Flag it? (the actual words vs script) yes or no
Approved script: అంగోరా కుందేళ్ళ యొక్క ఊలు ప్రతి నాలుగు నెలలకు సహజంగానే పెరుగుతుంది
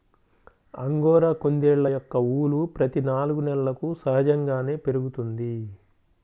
no